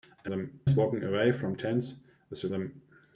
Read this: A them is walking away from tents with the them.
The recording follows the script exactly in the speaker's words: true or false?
true